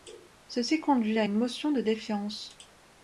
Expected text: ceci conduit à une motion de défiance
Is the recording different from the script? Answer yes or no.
no